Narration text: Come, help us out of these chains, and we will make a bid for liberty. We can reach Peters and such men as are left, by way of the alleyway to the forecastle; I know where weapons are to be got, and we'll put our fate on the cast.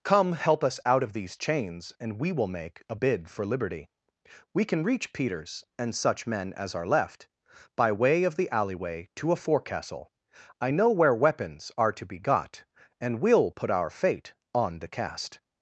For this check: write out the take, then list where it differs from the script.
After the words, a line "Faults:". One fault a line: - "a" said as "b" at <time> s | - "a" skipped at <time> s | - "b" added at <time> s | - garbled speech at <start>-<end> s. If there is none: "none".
Come, help us out of these chains, and we will make a bid for liberty. We can reach Peters and such men as are left, by way of the alleyway to a forecastle; I know where weapons are to be got, and we'll put our fate on the cast.
Faults:
- "the" said as "a" at 9.3 s